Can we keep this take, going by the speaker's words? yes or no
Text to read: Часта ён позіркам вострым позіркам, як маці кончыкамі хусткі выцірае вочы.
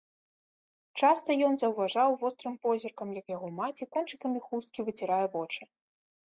no